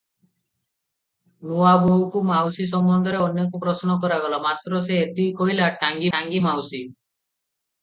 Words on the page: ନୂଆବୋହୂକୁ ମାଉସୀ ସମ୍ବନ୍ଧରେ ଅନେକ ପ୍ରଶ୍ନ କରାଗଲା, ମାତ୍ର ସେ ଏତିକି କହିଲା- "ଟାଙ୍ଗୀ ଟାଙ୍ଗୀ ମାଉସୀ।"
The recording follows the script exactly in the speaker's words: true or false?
true